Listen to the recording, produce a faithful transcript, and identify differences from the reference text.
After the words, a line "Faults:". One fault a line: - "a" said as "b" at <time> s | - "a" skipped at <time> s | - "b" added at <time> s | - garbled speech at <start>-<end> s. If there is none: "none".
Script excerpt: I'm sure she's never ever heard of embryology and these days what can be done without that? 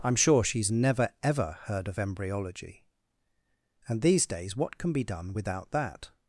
I'm sure she's never ever heard of embryology and these days what can be done without that?
Faults:
none